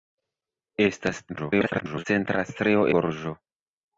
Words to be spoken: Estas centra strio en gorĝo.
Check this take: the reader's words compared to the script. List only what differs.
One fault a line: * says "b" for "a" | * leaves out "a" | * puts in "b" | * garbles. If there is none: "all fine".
* garbles
* leaves out "en"